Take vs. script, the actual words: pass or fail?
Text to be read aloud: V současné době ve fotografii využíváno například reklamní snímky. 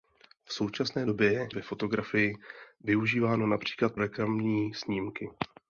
pass